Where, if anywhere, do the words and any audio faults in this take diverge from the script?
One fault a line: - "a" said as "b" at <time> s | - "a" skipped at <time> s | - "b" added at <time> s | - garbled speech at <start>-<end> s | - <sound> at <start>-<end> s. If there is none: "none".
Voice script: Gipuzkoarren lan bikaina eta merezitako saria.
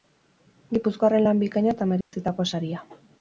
- dropout at 2.0-2.1 s